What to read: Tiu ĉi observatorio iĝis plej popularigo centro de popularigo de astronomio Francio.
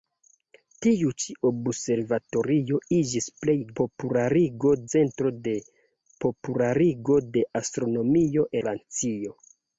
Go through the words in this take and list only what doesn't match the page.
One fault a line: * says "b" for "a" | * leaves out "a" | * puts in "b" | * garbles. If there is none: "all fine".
all fine